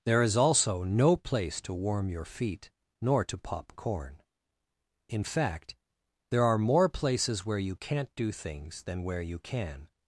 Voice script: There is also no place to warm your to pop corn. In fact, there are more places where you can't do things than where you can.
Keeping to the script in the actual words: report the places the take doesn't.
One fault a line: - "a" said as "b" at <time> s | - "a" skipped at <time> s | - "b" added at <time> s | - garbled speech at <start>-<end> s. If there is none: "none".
- "feet nor" added at 2.2 s